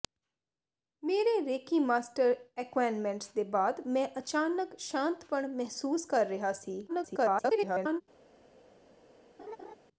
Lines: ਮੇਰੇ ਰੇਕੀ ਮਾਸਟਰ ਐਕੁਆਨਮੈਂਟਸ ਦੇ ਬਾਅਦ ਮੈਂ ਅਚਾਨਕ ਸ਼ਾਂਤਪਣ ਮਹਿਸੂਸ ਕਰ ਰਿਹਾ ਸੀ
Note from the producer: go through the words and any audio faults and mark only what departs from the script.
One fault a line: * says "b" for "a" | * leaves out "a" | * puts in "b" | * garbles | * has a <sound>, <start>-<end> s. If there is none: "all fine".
* garbles
* has a laugh, 9.4-9.7 s